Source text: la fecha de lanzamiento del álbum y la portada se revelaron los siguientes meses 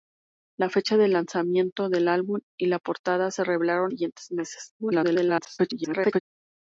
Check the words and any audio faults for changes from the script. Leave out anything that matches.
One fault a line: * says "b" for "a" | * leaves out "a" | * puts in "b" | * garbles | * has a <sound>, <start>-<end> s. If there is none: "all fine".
* leaves out "los"
* garbles